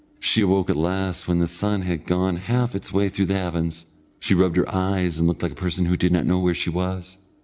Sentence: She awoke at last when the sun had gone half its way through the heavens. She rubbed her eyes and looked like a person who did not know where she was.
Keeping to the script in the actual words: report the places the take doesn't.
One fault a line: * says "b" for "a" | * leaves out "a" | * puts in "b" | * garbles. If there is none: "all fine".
all fine